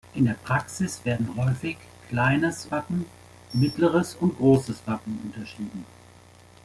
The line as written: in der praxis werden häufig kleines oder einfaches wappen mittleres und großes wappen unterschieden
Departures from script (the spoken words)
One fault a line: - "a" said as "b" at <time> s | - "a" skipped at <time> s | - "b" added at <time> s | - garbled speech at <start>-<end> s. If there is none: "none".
- "oder einfaches" skipped at 2.7 s